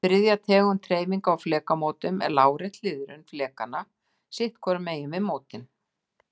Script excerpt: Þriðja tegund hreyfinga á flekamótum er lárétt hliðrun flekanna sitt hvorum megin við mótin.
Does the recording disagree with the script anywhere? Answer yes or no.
no